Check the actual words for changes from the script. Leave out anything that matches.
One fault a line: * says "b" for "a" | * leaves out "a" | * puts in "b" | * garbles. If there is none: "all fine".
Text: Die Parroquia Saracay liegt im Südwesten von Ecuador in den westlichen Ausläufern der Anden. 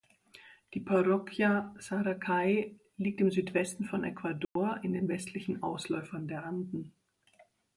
all fine